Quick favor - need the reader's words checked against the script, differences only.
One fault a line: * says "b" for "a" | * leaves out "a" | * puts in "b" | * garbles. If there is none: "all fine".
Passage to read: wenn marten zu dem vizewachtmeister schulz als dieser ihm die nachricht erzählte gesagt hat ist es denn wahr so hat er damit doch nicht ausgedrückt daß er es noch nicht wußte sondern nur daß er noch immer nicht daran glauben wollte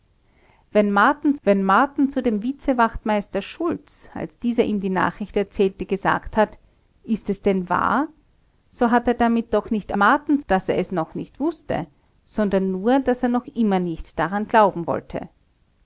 * puts in "wenn marten"
* says "marten" for "ausgedrückt"